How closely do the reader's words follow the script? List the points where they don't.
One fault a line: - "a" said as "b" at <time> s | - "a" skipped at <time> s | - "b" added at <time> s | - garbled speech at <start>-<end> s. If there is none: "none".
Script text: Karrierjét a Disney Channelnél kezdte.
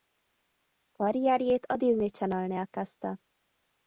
none